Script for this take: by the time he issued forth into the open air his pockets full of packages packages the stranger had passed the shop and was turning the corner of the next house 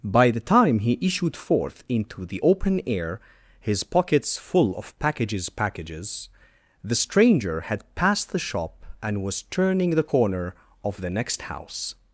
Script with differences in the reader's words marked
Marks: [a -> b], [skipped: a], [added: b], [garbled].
by the time he issued forth into the open air his pockets full of packages packages the stranger had passed the shop and was turning the corner of the next house